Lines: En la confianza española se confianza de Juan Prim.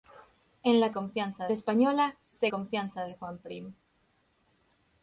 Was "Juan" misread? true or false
false